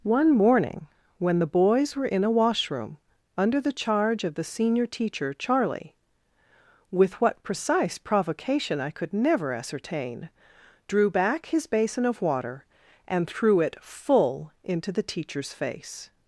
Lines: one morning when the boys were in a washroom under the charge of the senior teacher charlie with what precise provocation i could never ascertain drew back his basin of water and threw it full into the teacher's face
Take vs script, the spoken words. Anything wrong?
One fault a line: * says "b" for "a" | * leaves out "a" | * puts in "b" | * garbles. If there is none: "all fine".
all fine